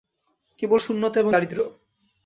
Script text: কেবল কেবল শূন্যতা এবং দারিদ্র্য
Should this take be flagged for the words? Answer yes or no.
yes